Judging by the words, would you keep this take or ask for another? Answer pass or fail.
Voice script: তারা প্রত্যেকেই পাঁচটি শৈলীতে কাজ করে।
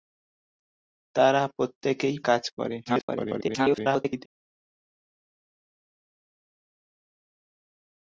fail